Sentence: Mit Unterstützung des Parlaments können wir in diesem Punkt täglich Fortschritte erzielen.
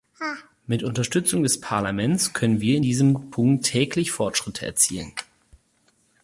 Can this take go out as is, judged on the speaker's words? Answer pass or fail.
pass